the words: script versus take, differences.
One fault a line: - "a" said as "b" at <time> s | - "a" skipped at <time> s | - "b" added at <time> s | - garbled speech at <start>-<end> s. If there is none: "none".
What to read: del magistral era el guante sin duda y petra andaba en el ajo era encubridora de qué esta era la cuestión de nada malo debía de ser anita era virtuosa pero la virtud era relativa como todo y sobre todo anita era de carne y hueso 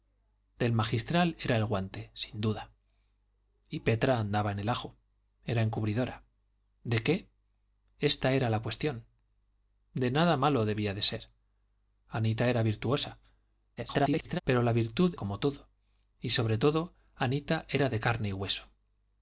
- garbled speech at 13.8-14.4 s
- "era relativa" skipped at 15.1 s